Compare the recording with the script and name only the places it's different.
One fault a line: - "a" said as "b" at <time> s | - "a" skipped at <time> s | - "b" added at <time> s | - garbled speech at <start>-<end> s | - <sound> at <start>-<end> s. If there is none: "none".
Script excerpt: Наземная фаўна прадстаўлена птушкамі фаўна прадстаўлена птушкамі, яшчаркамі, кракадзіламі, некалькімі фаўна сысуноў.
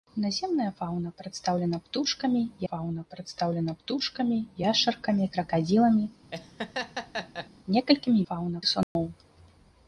- laugh at 6.3-7.5 s
- dropout at 8.8-9.0 s